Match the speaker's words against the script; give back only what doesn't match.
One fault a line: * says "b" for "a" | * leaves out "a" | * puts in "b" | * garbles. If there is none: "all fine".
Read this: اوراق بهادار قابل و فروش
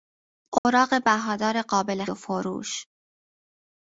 all fine